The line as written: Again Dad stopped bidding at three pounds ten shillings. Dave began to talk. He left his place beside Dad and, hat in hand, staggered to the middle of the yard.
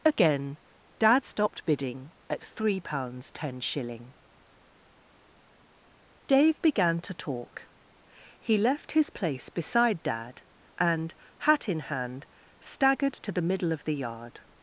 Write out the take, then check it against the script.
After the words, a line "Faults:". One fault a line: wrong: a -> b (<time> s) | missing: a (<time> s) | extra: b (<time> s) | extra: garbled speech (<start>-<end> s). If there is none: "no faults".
Again Dad stopped bidding at three pounds ten shilling. Dave began to talk. He left his place beside Dad and, hat in hand, staggered to the middle of the yard.
Faults:
wrong: shillings -> shilling (3.6 s)